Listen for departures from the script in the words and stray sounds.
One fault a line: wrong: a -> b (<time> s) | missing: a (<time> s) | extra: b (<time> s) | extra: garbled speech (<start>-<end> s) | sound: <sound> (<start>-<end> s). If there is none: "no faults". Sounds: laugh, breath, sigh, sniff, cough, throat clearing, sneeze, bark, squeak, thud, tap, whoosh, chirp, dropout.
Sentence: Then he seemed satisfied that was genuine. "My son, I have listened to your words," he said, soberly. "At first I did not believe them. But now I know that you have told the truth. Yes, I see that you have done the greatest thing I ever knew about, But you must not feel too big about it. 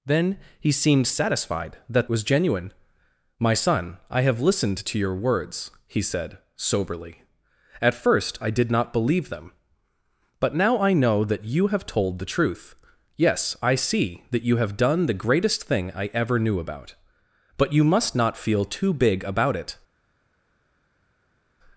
no faults